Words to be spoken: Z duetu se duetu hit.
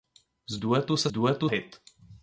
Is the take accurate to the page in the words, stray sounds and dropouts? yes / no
yes